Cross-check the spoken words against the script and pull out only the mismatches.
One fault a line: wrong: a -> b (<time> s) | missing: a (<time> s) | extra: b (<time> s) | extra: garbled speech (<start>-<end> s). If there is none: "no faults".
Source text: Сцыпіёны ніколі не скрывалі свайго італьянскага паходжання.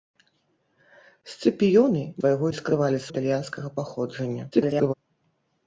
wrong: ніколі -> свайго (2.2 s)
missing: свайго (3.1 s)
extra: garbled speech (4.5-4.9 s)